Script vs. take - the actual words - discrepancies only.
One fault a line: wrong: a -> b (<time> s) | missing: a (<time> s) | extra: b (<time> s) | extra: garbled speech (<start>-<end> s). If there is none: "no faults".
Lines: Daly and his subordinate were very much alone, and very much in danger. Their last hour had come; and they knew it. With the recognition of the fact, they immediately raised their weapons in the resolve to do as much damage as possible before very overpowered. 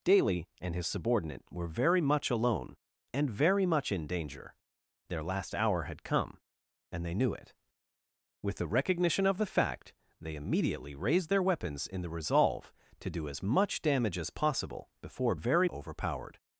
no faults